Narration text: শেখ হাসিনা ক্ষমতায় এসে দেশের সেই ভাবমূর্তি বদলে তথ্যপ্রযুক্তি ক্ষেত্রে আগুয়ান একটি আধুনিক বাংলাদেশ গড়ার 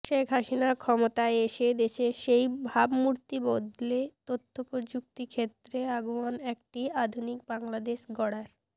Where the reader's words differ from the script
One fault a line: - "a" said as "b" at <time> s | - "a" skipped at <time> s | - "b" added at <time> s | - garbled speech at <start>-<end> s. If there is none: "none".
none